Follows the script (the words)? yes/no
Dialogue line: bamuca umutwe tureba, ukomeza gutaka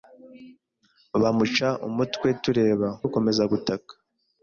yes